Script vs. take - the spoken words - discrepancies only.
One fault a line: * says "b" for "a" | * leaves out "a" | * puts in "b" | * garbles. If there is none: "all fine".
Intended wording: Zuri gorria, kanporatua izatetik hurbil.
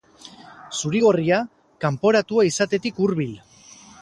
all fine